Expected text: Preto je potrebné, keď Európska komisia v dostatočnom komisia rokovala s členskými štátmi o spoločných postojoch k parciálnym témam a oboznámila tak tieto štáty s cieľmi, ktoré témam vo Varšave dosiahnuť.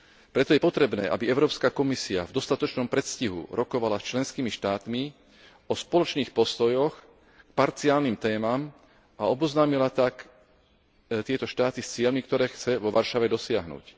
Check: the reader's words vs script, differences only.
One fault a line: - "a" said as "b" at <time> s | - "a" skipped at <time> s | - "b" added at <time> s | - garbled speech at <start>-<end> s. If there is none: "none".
- "keď" said as "aby" at 1.1 s
- "komisia" said as "predstihu" at 2.9 s
- "témam" said as "chce" at 12.5 s